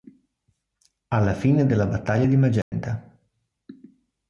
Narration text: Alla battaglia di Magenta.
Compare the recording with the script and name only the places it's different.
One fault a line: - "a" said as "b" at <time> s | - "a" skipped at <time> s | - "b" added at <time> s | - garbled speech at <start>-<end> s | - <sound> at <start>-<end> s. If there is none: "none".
- "fine della" added at 1.4 s
- dropout at 2.6-2.7 s